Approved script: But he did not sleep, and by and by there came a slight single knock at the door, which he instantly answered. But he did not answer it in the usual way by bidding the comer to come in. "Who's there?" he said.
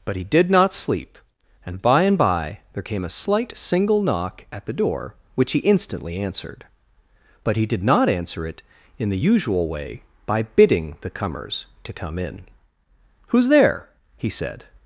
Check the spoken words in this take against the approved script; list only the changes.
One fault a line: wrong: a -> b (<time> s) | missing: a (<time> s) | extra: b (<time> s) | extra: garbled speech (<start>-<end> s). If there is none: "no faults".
wrong: comer -> comers (11.1 s)